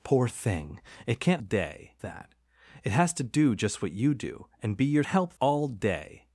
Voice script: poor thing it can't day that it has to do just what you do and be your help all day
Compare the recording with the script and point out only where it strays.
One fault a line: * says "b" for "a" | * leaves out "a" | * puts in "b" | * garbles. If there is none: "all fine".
all fine